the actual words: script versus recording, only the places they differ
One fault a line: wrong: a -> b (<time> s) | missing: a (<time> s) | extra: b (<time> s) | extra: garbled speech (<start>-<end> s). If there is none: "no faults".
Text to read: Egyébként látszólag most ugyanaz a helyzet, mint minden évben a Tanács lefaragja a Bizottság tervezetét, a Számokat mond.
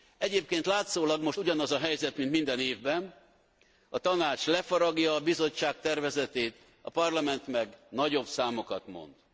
extra: Parlament meg nagyobb (6.9 s)